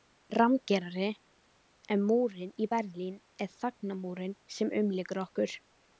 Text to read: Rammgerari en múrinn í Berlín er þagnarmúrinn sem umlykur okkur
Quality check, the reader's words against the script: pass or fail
pass